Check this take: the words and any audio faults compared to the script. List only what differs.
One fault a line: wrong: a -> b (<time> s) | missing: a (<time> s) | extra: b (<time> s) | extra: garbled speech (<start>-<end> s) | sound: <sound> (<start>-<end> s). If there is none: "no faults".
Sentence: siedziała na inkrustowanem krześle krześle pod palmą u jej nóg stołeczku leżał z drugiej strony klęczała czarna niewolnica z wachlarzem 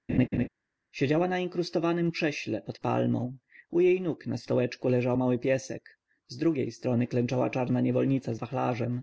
sound: laugh (0.1-0.5 s)
missing: krześle (2.6 s)
extra: na (4.3 s)
extra: mały piesek (5.2 s)